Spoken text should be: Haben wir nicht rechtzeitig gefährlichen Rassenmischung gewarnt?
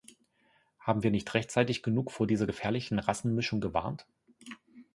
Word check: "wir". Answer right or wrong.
right